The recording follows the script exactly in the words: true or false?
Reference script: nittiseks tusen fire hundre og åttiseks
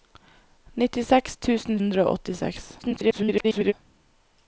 false